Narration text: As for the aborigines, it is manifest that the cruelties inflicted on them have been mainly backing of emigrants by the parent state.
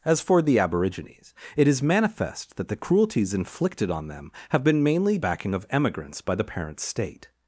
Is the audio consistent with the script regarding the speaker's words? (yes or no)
yes